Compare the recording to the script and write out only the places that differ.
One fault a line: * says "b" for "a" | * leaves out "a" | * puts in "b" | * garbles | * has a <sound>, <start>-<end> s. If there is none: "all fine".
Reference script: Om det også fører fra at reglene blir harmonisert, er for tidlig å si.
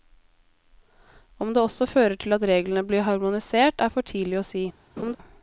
* says "til" for "fra"
* has a laugh, 5.0-5.2 s